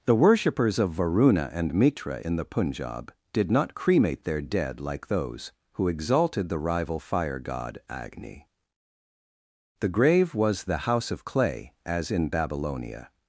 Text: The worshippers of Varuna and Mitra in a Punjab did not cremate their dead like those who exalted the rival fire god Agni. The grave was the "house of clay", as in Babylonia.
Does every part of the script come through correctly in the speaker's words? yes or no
no